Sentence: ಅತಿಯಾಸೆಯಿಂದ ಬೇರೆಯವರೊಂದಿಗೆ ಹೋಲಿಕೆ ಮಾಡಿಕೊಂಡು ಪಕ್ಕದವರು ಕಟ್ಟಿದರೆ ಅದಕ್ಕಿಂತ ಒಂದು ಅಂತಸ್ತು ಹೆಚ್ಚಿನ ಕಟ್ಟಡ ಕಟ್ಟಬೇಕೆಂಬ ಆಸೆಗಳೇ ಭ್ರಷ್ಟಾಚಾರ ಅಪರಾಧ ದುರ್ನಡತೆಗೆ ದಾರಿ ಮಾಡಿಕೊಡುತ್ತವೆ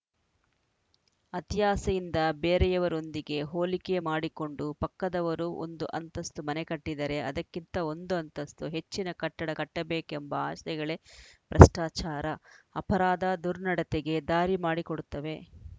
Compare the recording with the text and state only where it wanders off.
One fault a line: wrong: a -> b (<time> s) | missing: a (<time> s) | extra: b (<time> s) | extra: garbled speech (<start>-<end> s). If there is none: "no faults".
extra: ಒಂದು ಅಂತಸ್ತು ಮನೆ (5.6 s)